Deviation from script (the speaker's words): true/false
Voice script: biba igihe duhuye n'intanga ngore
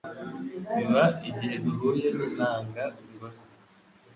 false